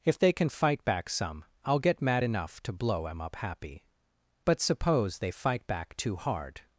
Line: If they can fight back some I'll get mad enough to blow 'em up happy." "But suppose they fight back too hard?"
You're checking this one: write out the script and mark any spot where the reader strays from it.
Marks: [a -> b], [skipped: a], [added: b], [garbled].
If they can fight back some I'll get mad enough to blow 'em up happy." "But suppose they fight back too hard?"